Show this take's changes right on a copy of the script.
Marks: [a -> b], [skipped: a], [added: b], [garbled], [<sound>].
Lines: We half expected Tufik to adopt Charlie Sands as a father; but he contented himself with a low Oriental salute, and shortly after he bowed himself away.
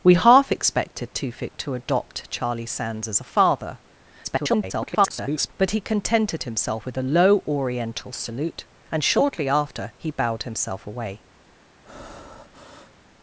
We half expected Tufik to adopt Charlie Sands as a father; [garbled] but he contented himself with a low Oriental salute, and shortly after he bowed himself away. [breath]